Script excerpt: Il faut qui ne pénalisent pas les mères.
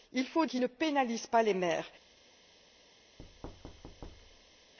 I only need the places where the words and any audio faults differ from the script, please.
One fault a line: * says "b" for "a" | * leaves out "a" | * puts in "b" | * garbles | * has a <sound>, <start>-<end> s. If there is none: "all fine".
* has a thud, 3.2-4.7 s